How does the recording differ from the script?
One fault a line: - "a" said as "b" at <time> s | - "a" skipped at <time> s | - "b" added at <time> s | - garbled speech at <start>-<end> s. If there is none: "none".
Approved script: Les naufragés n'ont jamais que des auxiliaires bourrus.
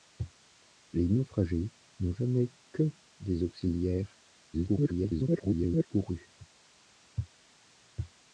- garbled speech at 4.5-5.9 s